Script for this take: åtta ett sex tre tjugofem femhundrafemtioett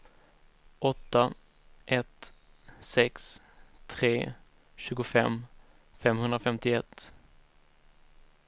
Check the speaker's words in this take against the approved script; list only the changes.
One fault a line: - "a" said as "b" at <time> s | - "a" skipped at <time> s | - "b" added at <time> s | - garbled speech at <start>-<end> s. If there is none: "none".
none